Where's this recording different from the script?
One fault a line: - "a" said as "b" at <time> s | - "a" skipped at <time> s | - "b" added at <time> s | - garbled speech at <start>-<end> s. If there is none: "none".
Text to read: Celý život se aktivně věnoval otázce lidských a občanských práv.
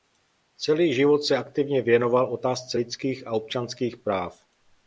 none